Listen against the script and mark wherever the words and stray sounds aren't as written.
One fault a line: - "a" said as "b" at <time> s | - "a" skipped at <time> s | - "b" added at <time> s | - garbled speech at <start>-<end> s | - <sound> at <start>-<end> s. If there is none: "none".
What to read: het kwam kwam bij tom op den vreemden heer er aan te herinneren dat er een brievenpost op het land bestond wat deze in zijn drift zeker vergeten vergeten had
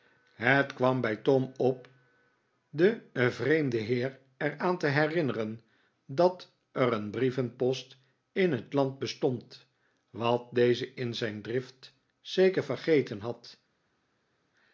- "kwam" skipped at 1.0 s
- "op" said as "in" at 8.3 s
- "vergeten" skipped at 13.2 s